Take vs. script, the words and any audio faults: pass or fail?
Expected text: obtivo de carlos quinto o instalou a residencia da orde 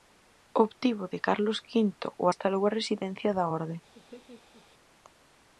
fail